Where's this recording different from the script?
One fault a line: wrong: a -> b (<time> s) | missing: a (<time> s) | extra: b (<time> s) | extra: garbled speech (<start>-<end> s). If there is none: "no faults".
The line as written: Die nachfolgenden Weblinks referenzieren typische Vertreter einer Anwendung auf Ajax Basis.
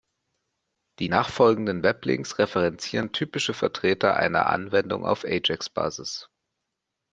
no faults